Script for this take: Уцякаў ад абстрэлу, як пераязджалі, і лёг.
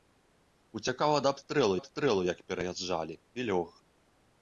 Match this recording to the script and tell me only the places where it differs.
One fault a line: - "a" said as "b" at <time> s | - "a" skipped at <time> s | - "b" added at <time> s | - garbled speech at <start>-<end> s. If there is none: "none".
- "абстрэлу" added at 1.8 s